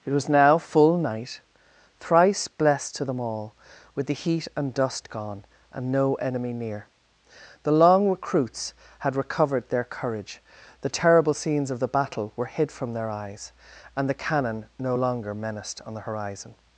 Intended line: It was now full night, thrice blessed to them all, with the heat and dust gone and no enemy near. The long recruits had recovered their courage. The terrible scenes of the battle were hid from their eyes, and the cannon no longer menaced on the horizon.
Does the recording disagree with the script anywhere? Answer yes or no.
no